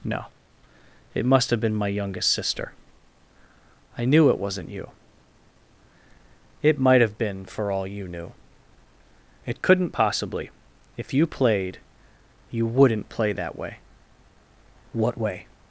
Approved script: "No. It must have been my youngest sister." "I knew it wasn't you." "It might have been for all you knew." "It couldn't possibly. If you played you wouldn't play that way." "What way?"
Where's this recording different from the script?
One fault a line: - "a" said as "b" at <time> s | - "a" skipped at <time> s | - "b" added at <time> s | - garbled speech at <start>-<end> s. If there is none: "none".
none